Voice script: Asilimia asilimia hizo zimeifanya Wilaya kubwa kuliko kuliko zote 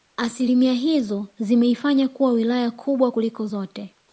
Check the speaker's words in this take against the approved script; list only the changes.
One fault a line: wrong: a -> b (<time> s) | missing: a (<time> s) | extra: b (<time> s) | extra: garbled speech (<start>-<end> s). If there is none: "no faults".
missing: asilimia (0.7 s)
extra: kuwa (2.1 s)
missing: kuliko (3.5 s)